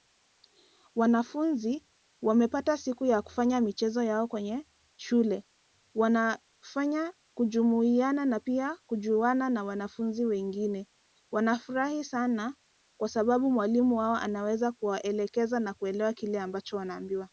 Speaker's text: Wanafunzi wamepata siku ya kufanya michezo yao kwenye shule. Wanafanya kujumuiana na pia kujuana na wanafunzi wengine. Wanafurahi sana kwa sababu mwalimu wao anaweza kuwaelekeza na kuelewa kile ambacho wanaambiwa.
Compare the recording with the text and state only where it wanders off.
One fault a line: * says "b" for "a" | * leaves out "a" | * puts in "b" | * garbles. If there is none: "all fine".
all fine